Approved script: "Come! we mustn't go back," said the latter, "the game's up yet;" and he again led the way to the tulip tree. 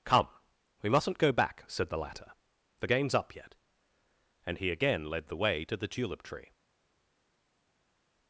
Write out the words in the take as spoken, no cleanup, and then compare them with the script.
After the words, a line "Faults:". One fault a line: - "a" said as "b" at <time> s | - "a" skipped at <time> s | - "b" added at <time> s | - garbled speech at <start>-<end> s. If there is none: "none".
"Come! we mustn't go back," said the latter, "the game's up yet;" and he again led the way to the tulip tree.
Faults:
none